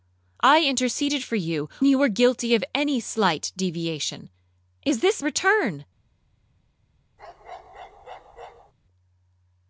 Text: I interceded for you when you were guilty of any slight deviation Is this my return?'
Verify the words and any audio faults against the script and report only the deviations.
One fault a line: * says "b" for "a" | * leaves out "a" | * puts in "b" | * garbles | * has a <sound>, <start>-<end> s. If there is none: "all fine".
* leaves out "when"
* leaves out "my"
* has a bark, 7.2-8.7 s